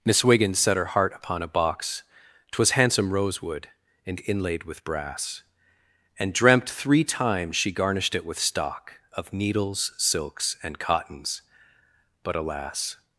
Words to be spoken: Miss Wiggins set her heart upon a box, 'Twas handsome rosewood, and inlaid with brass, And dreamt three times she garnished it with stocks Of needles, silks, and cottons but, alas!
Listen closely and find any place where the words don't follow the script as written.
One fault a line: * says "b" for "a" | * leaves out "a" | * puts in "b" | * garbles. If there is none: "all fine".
* says "stock" for "stocks"